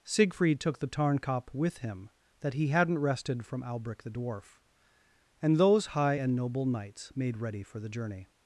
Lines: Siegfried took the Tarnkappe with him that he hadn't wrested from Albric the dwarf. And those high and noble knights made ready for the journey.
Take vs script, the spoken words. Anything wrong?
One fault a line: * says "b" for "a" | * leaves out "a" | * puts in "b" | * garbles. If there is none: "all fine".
all fine